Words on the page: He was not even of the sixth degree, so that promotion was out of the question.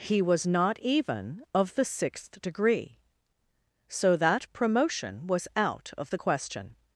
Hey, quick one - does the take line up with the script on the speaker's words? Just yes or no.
yes